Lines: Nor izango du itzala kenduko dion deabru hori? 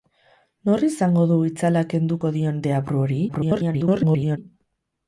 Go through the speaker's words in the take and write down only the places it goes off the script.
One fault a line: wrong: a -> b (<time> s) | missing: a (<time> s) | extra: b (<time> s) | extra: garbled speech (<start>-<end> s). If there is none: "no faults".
extra: garbled speech (3.3-4.4 s)